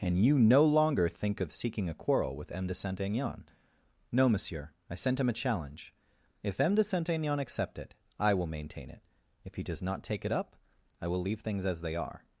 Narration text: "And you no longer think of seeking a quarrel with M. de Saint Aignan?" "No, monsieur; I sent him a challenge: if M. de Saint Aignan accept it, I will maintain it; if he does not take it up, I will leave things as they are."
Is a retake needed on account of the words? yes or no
no